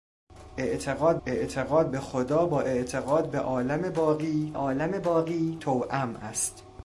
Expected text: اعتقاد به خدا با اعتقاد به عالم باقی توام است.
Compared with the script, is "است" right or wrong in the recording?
right